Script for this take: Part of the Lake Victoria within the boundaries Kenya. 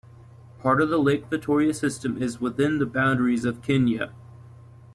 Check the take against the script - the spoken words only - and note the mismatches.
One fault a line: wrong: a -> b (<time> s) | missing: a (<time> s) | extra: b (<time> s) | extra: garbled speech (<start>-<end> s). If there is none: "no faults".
extra: system is (1.7 s)
extra: of (3.4 s)